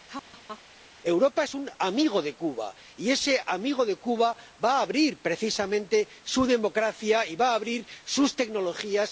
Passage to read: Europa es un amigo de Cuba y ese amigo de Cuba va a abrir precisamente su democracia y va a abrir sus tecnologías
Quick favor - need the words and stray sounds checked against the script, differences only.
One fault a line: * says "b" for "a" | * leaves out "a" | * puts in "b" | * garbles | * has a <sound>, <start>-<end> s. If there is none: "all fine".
* has a laugh, 0.1-0.6 s